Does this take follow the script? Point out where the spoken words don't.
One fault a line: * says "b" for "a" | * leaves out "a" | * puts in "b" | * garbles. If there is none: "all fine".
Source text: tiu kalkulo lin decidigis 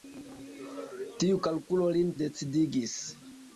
all fine